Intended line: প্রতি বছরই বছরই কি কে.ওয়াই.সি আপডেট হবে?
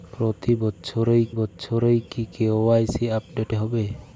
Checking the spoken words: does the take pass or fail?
pass